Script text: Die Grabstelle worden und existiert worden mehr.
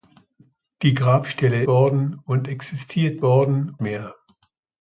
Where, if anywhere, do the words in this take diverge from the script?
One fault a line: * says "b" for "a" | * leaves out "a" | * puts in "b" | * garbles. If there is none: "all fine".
all fine